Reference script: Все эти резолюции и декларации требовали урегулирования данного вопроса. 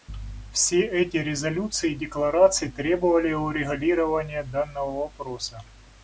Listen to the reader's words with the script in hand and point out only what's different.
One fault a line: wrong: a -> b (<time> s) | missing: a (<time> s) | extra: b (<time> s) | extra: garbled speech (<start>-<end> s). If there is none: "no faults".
no faults